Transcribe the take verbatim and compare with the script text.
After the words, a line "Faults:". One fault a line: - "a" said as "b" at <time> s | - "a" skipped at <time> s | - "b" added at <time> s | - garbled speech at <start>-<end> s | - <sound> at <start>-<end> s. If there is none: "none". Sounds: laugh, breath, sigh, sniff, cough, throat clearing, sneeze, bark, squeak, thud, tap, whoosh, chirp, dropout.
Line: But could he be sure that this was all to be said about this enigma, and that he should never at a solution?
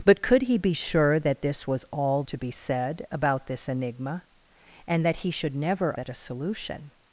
But could he be sure that this was all to be said about this enigma, and that he should never at a solution?
Faults:
none